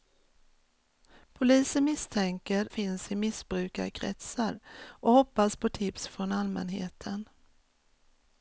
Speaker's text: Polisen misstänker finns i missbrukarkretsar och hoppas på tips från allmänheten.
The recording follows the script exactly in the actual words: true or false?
true